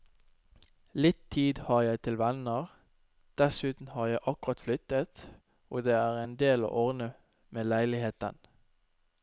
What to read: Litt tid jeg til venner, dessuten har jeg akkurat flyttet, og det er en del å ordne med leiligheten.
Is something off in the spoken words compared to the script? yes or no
yes